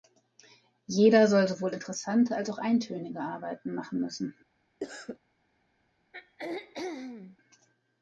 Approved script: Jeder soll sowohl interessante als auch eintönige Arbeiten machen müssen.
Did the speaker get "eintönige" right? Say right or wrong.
right